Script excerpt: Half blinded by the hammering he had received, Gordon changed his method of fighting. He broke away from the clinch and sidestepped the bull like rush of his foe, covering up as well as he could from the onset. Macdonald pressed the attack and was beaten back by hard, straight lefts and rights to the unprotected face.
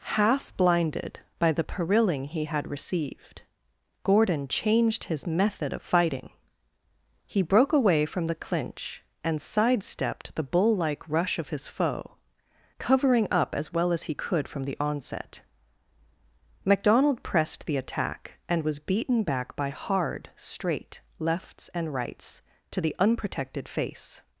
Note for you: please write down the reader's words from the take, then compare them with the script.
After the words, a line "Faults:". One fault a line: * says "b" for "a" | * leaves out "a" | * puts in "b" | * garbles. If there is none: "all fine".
Half blinded by the perilling he had received, Gordon changed his method of fighting. He broke away from the clinch and sidestepped the bull like rush of his foe, covering up as well as he could from the onset. Macdonald pressed the attack and was beaten back by hard, straight lefts and rights to the unprotected face.
Faults:
* says "perilling" for "hammering"